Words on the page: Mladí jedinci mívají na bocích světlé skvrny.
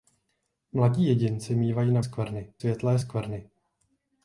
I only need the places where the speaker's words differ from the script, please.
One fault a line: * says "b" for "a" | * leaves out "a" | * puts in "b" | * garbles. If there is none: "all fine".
* says "skvrny" for "bocích"